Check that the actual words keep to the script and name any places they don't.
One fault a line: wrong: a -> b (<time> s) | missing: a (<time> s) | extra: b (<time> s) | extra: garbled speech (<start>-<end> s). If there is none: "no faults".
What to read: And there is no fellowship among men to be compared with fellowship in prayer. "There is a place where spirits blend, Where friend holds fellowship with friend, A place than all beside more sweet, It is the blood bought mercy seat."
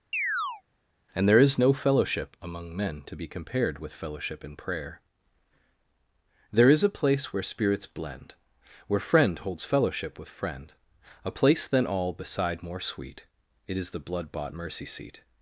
no faults